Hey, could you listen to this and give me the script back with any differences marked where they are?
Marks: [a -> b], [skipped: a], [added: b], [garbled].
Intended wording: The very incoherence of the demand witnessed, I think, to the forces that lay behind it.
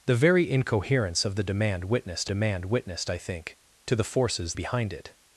The very incoherence of the demand witnessed, [added: demand witnessed] I think, to the forces [skipped: that lay] behind it.